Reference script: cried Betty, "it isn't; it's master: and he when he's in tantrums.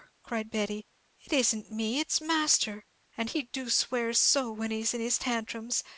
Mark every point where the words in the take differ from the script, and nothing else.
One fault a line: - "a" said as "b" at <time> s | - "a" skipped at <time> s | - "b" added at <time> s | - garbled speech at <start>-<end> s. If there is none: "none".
- "me" added at 1.7 s
- "do swear so" added at 3.5 s
- "his" added at 5.0 s